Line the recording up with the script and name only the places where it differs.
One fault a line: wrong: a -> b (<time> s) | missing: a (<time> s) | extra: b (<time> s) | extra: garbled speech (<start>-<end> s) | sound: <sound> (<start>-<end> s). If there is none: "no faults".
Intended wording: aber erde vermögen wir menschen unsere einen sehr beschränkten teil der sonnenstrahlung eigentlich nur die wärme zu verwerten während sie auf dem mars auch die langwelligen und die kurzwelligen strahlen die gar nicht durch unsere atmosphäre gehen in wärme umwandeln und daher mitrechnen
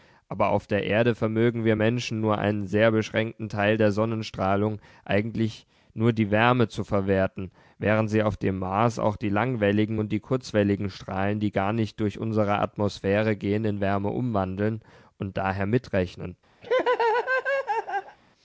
extra: auf der (0.5 s)
wrong: unsere -> nur (2.2 s)
sound: laugh (16.6-18.2 s)